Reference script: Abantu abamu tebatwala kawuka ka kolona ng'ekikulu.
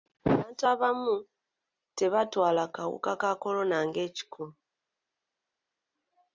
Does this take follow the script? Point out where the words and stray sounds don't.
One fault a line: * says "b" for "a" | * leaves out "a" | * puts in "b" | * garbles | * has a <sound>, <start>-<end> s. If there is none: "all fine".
all fine